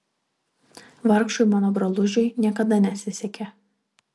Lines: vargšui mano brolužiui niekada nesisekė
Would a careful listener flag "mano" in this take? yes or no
no